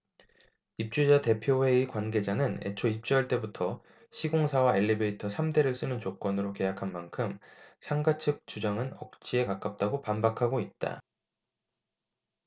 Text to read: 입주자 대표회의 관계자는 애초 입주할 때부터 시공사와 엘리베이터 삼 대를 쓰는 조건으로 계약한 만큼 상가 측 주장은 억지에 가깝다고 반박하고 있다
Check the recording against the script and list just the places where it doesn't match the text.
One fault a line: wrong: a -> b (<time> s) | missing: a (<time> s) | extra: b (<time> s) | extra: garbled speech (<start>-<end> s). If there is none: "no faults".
no faults